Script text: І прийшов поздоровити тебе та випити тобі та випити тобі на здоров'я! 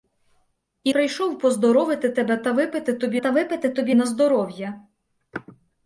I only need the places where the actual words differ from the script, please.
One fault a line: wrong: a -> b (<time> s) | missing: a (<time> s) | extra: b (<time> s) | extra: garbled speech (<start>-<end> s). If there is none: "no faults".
no faults